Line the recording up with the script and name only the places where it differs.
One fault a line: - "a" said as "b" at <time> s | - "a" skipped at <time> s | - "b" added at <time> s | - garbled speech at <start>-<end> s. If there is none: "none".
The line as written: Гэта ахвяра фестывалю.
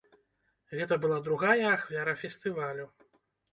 - "была другая" added at 1.0 s